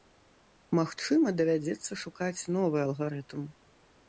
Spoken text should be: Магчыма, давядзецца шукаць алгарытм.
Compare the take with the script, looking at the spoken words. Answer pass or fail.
fail